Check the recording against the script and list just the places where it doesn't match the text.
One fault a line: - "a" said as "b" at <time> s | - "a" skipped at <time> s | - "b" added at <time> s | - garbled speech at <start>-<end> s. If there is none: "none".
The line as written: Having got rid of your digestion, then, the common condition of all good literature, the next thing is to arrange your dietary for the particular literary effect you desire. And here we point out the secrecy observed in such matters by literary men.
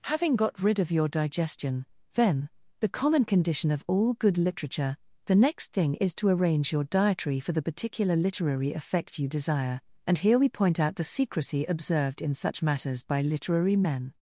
none